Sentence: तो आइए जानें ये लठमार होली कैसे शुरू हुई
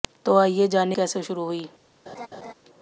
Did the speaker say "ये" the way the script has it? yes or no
no